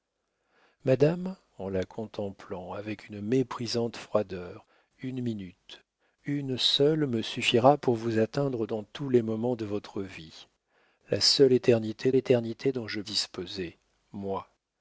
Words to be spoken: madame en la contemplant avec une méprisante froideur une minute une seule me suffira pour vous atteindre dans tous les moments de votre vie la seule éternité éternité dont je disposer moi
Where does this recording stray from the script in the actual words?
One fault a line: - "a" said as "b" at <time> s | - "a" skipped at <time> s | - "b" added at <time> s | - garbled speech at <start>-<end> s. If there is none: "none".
none